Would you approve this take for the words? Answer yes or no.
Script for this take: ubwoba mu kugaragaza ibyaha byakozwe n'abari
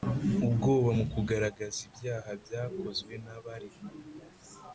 yes